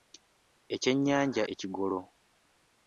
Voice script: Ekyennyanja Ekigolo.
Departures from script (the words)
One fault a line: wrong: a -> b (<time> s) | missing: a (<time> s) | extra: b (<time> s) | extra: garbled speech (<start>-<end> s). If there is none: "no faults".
no faults